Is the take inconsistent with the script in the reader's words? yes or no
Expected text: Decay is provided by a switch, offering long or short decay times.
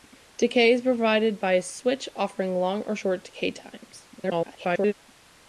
yes